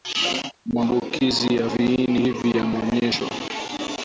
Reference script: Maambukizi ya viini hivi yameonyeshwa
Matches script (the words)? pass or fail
pass